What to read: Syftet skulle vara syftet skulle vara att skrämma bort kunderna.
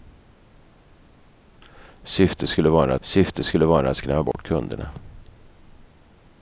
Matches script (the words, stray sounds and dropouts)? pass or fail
fail